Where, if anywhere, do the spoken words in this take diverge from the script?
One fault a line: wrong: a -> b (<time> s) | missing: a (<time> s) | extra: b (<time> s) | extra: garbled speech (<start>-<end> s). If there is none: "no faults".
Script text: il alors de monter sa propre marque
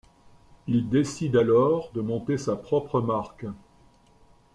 extra: décide (0.9 s)